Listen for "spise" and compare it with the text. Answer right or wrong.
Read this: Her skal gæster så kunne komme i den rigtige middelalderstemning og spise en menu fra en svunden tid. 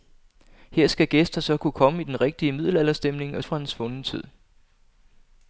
wrong